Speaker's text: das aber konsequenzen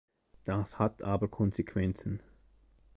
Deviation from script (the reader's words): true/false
true